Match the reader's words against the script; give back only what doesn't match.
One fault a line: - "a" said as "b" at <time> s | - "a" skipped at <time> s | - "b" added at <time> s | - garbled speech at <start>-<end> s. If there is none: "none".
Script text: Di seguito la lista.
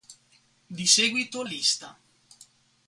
- "la" skipped at 1.4 s